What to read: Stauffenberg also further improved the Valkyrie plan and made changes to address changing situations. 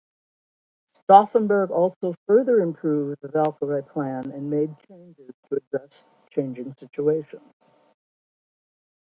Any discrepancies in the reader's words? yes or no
no